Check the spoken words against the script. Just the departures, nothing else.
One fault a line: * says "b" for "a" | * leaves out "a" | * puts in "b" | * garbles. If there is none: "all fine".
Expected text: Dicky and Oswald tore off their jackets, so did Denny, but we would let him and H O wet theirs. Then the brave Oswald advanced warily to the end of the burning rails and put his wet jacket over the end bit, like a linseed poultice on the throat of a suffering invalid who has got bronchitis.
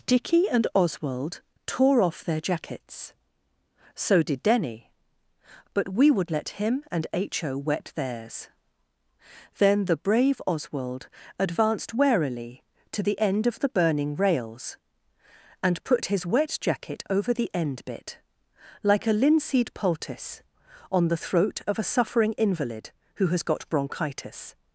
all fine